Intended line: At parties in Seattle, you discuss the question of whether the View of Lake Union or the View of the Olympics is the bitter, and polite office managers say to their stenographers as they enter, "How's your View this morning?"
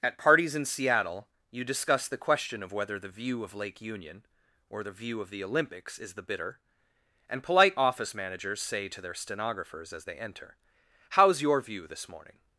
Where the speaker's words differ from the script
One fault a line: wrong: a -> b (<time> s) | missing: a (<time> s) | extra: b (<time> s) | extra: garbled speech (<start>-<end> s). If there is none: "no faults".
no faults